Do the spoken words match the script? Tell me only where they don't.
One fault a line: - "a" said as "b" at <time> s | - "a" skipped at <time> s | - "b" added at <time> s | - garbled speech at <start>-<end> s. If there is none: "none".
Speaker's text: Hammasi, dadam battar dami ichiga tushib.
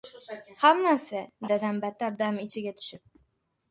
none